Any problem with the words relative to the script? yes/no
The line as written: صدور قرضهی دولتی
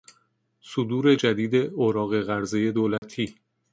yes